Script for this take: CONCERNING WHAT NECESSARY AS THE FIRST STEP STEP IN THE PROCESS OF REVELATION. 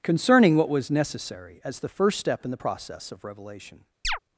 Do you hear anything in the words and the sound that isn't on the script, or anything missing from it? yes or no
yes